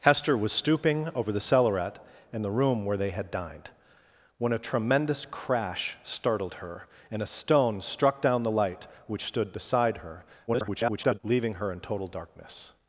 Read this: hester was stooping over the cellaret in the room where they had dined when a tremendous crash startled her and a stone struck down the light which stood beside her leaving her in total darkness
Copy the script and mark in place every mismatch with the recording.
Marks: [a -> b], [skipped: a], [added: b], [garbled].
hester was stooping over the cellaret in the room where they had dined when a tremendous crash startled her and a stone struck down the light which stood beside her [garbled] leaving her in total darkness